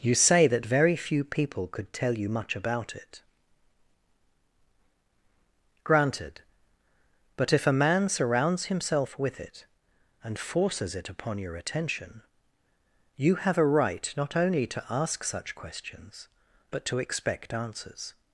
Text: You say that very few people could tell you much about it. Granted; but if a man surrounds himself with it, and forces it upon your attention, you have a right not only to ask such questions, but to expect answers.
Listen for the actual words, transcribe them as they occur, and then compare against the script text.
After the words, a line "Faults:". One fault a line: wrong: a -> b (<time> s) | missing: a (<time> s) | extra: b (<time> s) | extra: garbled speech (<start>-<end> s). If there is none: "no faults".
You say that very few people could tell you much about it. Granted; but if a man surrounds himself with it, and forces it upon your attention, you have a right not only to ask such questions, but to expect answers.
Faults:
no faults